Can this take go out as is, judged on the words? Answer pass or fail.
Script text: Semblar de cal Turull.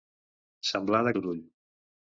fail